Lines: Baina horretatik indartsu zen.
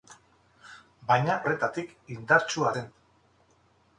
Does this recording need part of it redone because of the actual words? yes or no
no